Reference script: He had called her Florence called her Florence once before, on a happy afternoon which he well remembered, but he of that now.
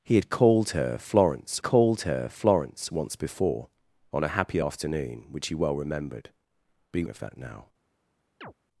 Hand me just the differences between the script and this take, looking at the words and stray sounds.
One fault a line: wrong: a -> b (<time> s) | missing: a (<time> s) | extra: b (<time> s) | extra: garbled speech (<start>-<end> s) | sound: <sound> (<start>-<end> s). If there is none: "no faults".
sound: chirp (8.4-8.5 s)